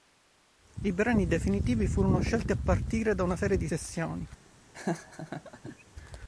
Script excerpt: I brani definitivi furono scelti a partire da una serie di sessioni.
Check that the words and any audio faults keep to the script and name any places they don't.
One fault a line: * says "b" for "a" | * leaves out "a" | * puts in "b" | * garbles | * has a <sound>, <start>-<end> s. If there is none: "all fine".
* has a laugh, 4.7-5.8 s